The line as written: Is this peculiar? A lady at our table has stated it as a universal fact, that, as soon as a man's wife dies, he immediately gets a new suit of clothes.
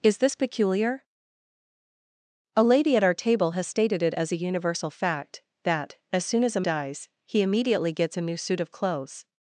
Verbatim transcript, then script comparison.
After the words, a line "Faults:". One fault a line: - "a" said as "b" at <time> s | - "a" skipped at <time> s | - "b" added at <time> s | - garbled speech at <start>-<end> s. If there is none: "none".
Is this peculiar? A lady at our table has stated it as a universal fact, that, as soon as a dies, he immediately gets a new suit of clothes.
Faults:
- "man's wife" skipped at 6.7 s